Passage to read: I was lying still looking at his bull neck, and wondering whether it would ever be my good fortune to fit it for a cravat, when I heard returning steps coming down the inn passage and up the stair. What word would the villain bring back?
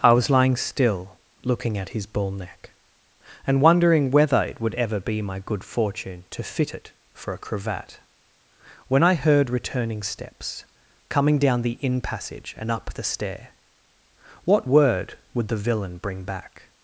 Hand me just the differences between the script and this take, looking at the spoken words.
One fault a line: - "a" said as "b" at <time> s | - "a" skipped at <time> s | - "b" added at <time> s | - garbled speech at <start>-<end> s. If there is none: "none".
none